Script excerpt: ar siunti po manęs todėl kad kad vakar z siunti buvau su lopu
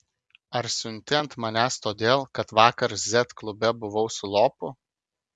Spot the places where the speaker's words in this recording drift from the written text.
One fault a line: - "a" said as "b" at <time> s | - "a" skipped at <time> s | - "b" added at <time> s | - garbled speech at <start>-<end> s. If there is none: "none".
- "po" said as "ant" at 1.2 s
- "kad" skipped at 2.5 s
- "siunti" said as "klube" at 3.4 s